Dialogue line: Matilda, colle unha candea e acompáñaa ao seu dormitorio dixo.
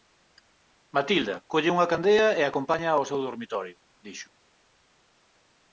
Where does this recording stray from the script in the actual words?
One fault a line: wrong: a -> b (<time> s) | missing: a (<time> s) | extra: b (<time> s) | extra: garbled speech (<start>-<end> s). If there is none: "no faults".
no faults